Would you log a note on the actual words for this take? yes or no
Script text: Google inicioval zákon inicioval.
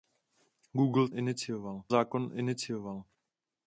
no